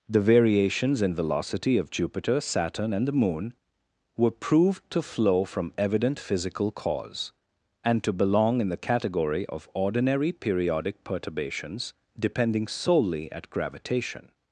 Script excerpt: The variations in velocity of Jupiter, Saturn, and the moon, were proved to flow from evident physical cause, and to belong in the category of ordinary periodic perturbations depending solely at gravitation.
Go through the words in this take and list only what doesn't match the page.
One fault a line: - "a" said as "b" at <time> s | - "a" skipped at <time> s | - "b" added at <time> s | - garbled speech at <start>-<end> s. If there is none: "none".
none